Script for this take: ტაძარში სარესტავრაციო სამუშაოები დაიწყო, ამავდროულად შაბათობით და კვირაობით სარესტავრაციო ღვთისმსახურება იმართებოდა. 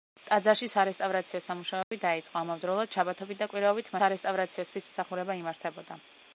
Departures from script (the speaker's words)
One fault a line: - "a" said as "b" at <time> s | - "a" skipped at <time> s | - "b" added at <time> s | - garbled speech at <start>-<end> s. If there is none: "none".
none